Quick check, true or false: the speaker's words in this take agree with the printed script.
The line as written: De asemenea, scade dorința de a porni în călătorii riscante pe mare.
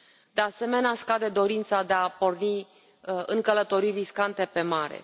true